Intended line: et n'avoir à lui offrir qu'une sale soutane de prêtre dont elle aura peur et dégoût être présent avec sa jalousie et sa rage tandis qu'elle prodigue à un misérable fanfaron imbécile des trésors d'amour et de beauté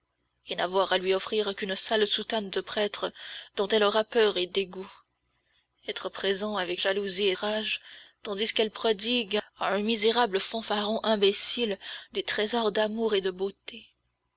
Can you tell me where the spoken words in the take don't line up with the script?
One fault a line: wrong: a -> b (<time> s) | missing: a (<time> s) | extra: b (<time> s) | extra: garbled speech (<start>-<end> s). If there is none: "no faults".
missing: sa (6.8 s)
missing: sa (7.4 s)